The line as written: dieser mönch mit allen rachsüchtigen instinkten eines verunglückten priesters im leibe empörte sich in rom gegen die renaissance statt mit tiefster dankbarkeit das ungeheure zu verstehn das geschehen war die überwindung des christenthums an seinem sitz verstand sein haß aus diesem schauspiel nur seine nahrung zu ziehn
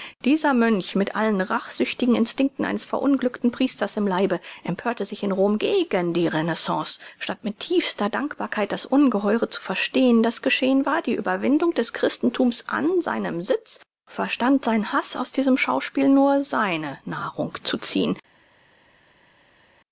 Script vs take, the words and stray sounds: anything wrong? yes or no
no